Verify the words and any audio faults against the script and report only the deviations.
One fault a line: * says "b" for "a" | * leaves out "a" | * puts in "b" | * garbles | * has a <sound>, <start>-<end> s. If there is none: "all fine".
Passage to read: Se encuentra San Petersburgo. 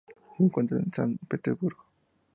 * puts in "en"